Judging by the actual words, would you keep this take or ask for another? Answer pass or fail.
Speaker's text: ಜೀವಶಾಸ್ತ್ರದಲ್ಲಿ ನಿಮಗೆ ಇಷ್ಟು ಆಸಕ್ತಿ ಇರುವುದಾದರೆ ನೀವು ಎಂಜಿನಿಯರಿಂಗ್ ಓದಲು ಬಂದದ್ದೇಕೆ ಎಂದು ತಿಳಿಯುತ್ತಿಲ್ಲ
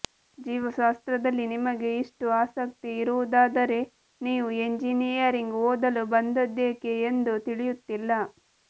pass